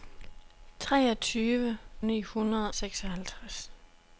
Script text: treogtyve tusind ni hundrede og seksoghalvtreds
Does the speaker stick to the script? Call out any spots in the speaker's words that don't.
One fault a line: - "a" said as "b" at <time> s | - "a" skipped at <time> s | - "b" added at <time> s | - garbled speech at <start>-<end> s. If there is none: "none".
- "tusind" skipped at 1.8 s
- "og" skipped at 2.7 s